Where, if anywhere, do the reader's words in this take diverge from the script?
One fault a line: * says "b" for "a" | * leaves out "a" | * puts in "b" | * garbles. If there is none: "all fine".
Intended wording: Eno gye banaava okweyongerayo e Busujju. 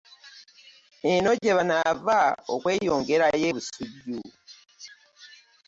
all fine